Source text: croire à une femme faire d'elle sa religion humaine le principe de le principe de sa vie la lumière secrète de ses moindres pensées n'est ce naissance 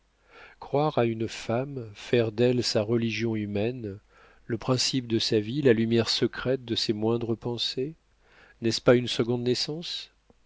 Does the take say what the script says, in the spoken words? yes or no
no